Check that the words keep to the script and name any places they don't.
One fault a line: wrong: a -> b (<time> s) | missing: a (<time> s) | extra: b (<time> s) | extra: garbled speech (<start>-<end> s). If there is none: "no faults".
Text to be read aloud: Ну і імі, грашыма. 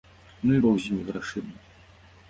extra: бог з (0.5 s)